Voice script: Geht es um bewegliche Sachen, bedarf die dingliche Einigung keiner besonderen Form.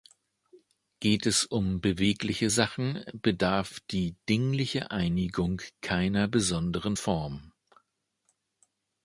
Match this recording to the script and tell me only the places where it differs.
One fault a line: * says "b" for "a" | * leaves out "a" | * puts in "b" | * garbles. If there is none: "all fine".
all fine